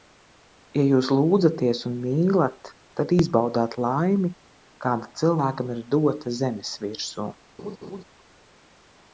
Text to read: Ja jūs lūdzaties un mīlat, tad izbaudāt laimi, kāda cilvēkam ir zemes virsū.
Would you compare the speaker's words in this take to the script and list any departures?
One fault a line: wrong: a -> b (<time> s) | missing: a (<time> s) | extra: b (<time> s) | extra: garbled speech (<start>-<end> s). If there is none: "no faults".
extra: dota (6.0 s)